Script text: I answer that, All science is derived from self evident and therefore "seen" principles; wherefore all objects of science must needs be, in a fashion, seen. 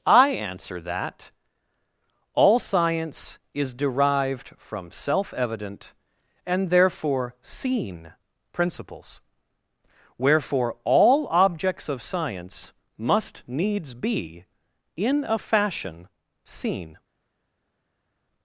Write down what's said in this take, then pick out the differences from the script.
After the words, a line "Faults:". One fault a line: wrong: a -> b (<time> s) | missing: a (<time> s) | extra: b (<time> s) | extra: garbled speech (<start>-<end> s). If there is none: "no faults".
I answer that, All science is derived from self evident and therefore "seen" principles; wherefore all objects of science must needs be, in a fashion, seen.
Faults:
no faults